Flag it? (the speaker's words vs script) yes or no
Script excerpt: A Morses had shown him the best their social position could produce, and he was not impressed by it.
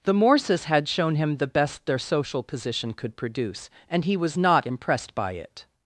yes